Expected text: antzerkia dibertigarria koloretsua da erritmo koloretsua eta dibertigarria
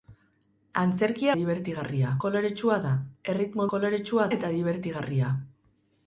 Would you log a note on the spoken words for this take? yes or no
no